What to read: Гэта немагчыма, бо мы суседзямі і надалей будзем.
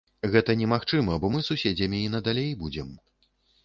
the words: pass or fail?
pass